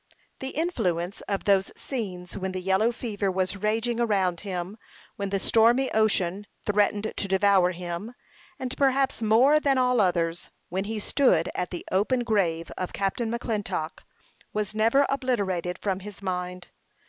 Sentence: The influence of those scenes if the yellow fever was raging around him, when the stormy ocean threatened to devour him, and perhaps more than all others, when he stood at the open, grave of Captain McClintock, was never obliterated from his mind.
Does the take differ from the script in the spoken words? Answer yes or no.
yes